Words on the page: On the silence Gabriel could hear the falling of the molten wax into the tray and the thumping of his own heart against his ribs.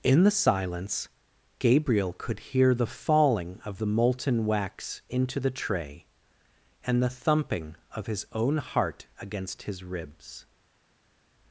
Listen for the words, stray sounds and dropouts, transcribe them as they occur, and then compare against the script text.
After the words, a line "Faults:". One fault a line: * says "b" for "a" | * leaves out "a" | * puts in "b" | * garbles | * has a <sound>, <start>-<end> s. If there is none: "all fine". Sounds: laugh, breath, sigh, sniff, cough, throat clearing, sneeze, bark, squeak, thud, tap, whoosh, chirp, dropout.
In the silence Gabriel could hear the falling of the molten wax into the tray and the thumping of his own heart against his ribs.
Faults:
* says "In" for "On"